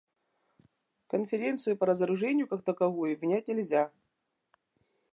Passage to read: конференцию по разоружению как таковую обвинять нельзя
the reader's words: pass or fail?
pass